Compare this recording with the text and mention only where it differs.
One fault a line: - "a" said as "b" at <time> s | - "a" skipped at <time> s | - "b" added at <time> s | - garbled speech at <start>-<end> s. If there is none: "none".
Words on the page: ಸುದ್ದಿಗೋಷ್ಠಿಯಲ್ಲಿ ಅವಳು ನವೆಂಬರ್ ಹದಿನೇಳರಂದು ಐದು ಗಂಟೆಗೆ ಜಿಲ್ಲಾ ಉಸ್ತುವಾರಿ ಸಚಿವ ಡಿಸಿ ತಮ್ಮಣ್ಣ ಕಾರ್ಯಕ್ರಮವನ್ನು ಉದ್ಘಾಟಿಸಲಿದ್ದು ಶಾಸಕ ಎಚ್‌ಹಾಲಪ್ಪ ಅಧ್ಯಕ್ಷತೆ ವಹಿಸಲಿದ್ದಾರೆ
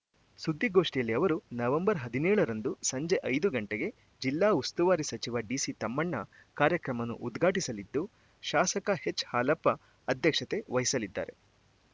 - "ಅವಳು" said as "ಅವರು" at 1.1 s
- "ಸಂಜೆ" added at 2.8 s